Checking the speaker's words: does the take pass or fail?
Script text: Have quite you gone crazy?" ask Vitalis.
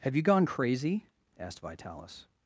fail